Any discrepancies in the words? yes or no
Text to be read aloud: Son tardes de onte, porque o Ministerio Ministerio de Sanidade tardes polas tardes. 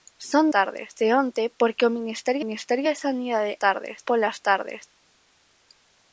no